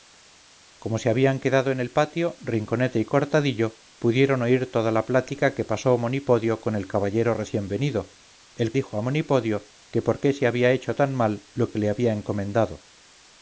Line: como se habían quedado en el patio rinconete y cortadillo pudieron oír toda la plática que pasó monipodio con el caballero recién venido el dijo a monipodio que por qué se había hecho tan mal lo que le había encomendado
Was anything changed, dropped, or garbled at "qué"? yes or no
no